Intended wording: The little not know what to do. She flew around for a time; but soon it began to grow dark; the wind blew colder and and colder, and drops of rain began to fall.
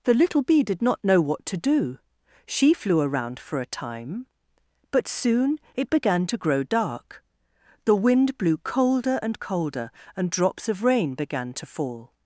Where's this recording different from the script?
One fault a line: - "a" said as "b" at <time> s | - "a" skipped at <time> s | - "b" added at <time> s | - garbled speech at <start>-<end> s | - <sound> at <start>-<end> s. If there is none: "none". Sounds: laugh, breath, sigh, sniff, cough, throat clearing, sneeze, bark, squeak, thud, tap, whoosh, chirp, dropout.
- "bee did" added at 0.4 s
- "and" skipped at 9.4 s